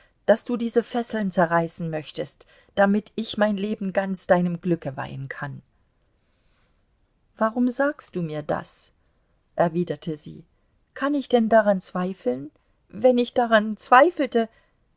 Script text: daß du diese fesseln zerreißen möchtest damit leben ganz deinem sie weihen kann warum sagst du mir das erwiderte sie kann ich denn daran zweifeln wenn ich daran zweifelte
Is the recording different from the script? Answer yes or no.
yes